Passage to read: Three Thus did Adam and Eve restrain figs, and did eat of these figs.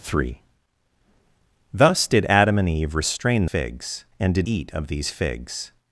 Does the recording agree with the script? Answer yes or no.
yes